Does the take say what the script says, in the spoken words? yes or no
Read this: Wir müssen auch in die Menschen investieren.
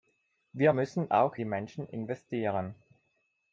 no